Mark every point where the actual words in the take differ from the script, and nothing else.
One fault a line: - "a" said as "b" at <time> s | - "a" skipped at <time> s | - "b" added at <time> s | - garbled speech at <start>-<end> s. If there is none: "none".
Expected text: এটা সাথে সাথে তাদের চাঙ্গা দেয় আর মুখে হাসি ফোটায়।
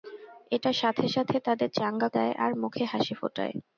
none